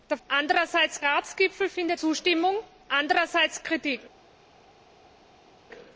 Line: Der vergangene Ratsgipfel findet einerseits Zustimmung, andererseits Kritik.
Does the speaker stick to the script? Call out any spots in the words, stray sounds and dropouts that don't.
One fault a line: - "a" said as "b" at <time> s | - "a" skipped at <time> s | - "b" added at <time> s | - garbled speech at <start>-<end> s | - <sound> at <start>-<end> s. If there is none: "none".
- "vergangene" said as "andererseits" at 0.3 s
- "einerseits" skipped at 2.0 s